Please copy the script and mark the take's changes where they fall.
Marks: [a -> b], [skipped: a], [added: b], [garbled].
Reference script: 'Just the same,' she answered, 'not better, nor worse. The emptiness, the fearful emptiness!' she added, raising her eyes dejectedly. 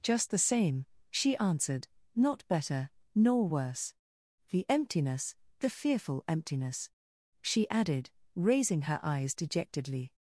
'Just the same,' she answered, 'not better, nor worse. The emptiness, the fearful emptiness!' she added, raising her eyes dejectedly.